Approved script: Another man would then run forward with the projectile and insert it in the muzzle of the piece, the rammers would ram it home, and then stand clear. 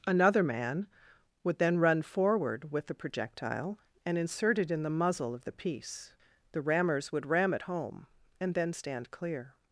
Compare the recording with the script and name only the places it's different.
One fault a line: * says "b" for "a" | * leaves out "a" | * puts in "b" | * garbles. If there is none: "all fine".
all fine